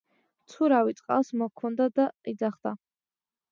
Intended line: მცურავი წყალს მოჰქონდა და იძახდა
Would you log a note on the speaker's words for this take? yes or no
no